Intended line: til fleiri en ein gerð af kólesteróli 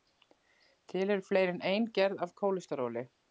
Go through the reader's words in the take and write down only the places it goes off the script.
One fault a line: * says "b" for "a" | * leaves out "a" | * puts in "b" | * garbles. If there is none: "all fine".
* puts in "eru"